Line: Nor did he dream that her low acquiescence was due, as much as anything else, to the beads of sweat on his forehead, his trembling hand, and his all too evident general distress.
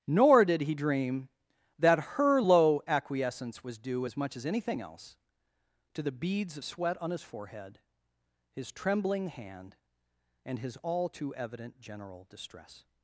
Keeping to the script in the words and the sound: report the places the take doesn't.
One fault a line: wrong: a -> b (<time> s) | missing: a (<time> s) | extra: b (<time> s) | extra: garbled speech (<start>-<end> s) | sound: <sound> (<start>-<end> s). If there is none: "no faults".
no faults